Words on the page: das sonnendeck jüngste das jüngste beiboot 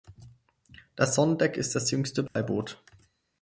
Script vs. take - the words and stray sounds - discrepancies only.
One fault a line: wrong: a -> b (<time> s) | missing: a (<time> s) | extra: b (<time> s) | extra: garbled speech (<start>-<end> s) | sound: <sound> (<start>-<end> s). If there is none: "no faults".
wrong: jüngste -> ist (1.6 s)
sound: dropout (2.3-2.4 s)